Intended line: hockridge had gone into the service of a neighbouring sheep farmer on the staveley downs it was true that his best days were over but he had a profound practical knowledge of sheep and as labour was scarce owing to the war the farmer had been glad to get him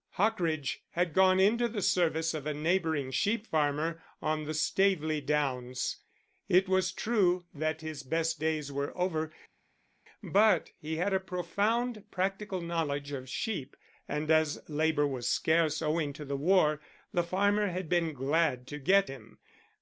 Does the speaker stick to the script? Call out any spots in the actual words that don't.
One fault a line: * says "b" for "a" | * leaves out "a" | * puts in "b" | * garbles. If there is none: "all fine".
all fine